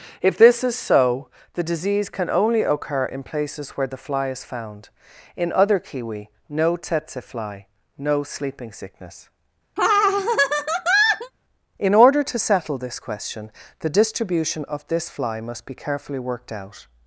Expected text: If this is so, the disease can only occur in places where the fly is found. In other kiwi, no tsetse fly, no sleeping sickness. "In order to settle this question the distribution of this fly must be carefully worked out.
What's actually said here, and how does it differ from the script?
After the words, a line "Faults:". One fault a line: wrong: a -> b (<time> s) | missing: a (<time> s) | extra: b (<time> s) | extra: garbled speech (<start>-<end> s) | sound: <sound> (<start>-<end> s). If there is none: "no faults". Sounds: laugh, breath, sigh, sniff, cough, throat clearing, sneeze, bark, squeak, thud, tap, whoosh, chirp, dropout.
If this is so, the disease can only occur in places where the fly is found. In other kiwi, no tsetse fly, no sleeping sickness. "In order to settle this question the distribution of this fly must be carefully worked out.
Faults:
sound: laugh (9.8-11.3 s)